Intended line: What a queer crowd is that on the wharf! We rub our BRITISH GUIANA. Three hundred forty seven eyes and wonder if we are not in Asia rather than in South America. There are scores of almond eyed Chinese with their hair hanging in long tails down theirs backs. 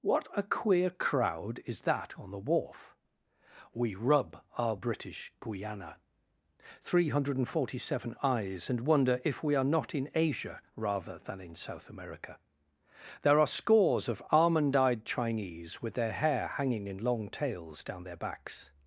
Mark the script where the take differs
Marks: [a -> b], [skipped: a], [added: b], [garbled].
What a queer crowd is that on the wharf! We rub our BRITISH GUIANA. Three hundred forty seven eyes and wonder if we are not in Asia rather than in South America. There are scores of almond eyed Chinese with their hair hanging in long tails down [theirs -> their] backs.